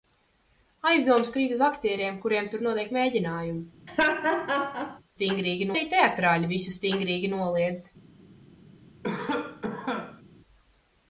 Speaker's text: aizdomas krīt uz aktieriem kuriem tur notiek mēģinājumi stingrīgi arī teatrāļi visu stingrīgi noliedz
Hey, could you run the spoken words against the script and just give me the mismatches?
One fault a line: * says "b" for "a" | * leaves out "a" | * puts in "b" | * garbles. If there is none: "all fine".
all fine